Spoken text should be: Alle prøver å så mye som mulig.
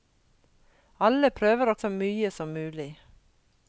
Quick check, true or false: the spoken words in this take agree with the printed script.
true